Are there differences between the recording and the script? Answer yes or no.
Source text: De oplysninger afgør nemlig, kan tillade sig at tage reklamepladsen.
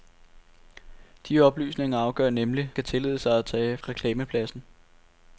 no